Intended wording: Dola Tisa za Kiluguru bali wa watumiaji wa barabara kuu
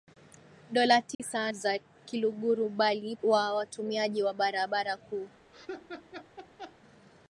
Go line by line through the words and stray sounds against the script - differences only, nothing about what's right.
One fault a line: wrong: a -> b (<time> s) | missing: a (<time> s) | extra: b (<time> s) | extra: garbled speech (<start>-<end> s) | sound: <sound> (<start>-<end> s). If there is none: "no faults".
sound: dropout (1.1-1.2 s)
sound: laugh (5.5-6.8 s)